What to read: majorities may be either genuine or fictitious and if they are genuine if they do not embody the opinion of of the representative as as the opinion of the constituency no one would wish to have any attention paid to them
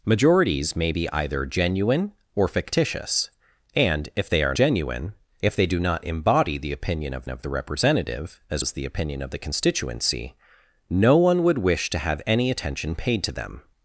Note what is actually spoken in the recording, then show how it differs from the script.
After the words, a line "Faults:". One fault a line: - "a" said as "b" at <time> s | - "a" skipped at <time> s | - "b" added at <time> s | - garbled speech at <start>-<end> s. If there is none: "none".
majorities may be either genuine or fictitious and if they are genuine if they do not embody the opinion of of the representative as as the opinion of the constituency no one would wish to have any attention paid to them
Faults:
none